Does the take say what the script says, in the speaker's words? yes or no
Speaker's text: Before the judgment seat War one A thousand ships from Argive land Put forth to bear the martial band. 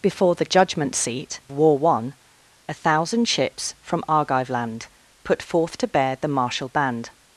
yes